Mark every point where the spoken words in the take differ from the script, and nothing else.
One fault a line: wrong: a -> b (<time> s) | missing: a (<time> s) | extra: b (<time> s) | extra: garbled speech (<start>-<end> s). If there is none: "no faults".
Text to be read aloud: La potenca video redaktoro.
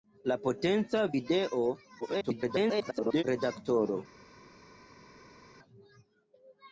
extra: garbled speech (2.0-3.2 s)